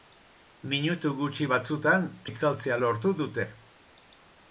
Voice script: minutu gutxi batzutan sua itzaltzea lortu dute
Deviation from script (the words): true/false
true